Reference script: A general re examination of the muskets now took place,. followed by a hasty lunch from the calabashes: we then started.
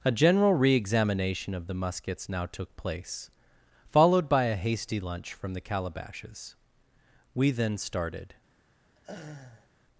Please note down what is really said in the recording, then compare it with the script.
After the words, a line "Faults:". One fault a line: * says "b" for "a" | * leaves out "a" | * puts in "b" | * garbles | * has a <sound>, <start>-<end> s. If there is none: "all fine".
A general re examination of the muskets now took place,. followed by a hasty lunch from the calabashes: we then started.
Faults:
* has a laugh, 8.9-9.7 s